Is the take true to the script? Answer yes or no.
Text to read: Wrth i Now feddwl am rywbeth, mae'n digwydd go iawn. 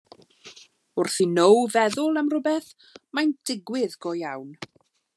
yes